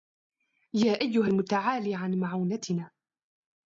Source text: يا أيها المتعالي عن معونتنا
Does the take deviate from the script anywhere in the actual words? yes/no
no